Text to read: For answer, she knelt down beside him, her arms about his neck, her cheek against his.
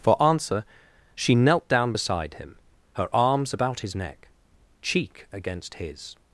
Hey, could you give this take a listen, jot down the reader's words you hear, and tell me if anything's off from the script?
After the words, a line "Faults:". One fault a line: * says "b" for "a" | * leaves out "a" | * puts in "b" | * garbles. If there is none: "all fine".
For answer, she knelt down beside him, her arms about his neck, cheek against his.
Faults:
* leaves out "her"